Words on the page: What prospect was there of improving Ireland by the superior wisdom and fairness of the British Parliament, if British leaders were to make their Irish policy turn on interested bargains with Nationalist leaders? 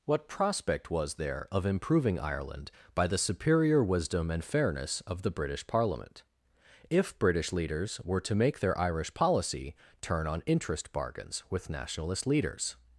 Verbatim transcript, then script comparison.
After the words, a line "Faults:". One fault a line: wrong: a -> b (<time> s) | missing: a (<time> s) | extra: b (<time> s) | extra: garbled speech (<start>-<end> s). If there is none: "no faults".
What prospect was there of improving Ireland by the superior wisdom and fairness of the British Parliament, if British leaders were to make their Irish policy turn on interest bargains with Nationalist leaders?
Faults:
wrong: interested -> interest (10.5 s)